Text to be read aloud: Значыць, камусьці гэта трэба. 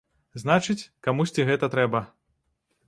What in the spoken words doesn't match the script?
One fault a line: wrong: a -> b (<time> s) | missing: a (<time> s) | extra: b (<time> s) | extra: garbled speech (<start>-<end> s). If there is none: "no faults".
no faults